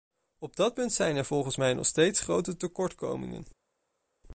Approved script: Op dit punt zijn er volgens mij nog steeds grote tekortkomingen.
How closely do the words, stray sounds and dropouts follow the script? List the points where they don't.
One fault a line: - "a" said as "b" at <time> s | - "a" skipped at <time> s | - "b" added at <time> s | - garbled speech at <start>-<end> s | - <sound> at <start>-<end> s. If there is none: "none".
- "dit" said as "dat" at 0.6 s